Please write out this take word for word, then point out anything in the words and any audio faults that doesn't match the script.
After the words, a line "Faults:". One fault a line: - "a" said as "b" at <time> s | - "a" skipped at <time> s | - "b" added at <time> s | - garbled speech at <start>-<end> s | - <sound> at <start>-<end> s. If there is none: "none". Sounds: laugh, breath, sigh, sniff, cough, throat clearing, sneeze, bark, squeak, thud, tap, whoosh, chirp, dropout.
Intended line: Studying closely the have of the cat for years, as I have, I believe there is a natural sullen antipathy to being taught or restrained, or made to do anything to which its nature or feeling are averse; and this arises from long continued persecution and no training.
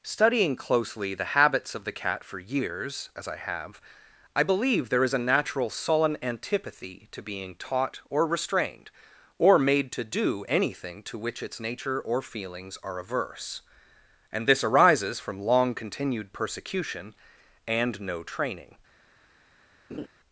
Studying closely the habits of the cat for years, as I have, I believe there is a natural sullen antipathy to being taught or restrained, or made to do anything to which its nature or feelings are averse; and this arises from long continued persecution and no training.
Faults:
- "have" said as "habits" at 1.4 s
- "feeling" said as "feelings" at 12.2 s
- laugh at 19.9-20.1 s